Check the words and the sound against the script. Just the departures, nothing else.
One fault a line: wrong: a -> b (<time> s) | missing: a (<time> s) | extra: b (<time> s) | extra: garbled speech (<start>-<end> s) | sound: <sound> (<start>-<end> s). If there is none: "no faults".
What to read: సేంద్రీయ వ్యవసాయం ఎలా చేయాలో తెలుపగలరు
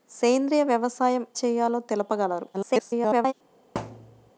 missing: ఎలా (1.2 s)
extra: garbled speech (2.5-3.3 s)
sound: thud (3.7-4.3 s)